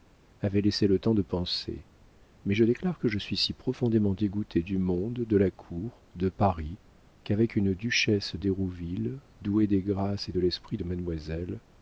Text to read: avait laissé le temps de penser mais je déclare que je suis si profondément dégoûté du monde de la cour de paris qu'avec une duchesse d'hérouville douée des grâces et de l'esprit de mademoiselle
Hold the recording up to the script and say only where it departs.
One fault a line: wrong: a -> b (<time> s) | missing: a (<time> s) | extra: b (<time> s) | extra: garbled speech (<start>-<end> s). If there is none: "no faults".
no faults